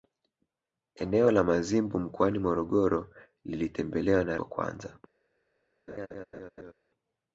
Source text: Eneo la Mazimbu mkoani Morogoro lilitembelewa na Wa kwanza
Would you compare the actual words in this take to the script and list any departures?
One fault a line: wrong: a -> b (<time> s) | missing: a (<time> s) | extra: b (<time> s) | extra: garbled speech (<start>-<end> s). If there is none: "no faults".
no faults